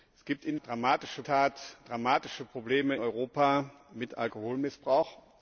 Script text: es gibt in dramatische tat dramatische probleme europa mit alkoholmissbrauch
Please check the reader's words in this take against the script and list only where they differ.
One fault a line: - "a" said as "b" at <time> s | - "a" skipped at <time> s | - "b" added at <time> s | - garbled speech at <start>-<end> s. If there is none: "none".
none